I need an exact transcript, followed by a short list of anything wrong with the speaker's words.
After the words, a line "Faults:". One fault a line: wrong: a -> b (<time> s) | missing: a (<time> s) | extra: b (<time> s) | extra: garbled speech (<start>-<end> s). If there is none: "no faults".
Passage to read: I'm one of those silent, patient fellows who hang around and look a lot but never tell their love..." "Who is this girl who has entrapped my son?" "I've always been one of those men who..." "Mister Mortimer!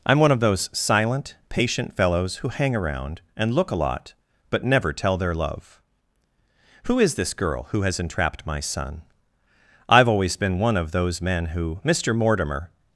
I'm one of those silent, patient fellows who hang around and look a lot but never tell their love..." "Who is this girl who has entrapped my son?" "I've always been one of those men who..." "Mister Mortimer!
Faults:
no faults